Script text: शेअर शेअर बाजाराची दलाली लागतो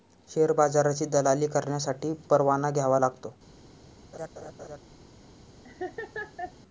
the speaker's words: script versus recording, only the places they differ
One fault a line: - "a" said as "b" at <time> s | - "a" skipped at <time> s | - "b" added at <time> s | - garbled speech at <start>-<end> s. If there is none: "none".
- "शेअर" skipped at 0.5 s
- "करण्यासाठी परवाना घ्यावा" added at 1.5 s